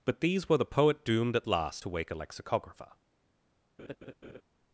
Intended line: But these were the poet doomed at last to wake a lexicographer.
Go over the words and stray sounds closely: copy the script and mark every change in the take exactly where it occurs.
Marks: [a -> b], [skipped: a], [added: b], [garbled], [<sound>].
But these were the poet doomed at last to wake a lexicographer. [laugh]